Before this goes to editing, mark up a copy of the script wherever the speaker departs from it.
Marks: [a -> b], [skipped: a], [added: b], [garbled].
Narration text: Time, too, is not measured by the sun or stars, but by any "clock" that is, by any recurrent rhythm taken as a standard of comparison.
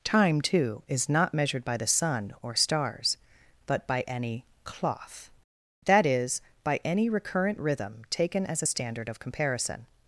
Time, too, is not measured by the sun or stars, but by any ["clock" -> cloth] that is, by any recurrent rhythm taken as a standard of comparison.